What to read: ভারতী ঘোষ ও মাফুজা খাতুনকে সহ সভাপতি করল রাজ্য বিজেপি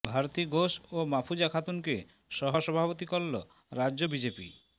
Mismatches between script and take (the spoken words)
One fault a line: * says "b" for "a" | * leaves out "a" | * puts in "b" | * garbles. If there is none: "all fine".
all fine